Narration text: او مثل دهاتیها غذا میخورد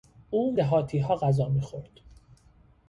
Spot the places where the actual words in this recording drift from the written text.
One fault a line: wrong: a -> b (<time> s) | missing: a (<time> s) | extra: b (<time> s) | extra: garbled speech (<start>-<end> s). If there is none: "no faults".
missing: مثل (0.6 s)